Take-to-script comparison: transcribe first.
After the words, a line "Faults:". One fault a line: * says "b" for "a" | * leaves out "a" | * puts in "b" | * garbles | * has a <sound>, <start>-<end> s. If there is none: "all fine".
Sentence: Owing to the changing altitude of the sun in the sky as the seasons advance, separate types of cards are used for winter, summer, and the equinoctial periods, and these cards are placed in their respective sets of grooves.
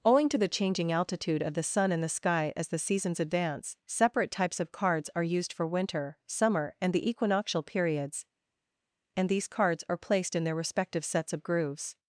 Owing to the changing altitude of the sun in the sky as the seasons advance, separate types of cards are used for winter, summer, and the equinoctial periods, and these cards are placed in their respective sets of grooves.
Faults:
all fine